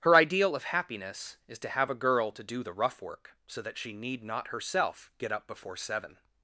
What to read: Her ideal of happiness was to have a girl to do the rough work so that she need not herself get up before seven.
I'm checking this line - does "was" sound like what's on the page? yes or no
no